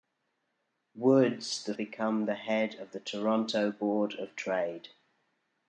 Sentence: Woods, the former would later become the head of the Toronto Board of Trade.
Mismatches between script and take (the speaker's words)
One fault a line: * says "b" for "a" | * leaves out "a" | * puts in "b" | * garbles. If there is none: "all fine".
* leaves out "former would later"